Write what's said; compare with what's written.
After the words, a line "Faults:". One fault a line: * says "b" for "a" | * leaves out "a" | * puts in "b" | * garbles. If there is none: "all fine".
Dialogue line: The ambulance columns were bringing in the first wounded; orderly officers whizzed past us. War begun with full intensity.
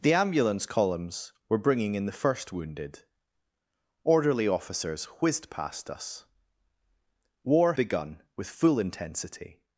The ambulance columns were bringing in the first wounded; orderly officers whizzed past us. War begun with full intensity.
Faults:
all fine